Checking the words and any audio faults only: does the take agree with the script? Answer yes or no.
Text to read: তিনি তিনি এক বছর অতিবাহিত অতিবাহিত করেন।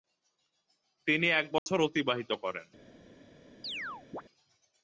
no